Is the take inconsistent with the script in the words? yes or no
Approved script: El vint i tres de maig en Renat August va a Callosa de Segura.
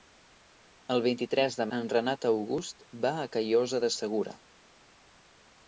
yes